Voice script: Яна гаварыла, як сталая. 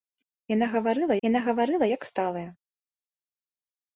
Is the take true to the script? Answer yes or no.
no